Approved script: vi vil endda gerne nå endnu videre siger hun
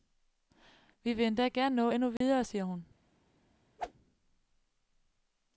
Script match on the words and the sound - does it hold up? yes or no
no